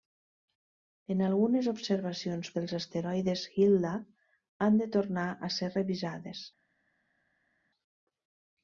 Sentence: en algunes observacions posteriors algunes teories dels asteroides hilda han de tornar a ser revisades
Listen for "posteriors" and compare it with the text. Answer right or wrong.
wrong